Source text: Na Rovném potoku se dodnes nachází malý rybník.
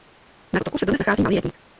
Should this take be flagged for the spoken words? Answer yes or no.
yes